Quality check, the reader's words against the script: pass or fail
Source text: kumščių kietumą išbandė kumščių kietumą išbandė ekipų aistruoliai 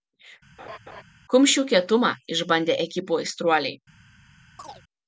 fail